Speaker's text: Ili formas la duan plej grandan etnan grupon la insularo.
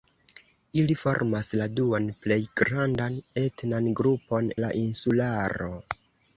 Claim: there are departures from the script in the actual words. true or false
false